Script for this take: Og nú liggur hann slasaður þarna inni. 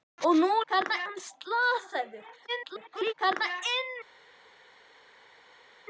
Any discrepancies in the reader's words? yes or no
yes